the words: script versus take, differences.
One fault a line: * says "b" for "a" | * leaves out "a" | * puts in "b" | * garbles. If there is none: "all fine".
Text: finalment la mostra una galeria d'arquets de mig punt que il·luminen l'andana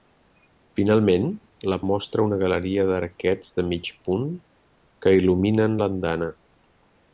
all fine